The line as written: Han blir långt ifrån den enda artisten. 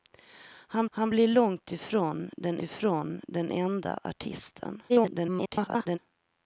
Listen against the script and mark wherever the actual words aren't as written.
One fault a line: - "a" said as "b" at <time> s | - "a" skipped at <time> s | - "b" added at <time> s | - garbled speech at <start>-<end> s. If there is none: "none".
- "han" added at 0.9 s
- "ifrån den" added at 2.6 s
- garbled speech at 4.9-6.0 s